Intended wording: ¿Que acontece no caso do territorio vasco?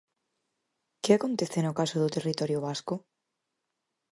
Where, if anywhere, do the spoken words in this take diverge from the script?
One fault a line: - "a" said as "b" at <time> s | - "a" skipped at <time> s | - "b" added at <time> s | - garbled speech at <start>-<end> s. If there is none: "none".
none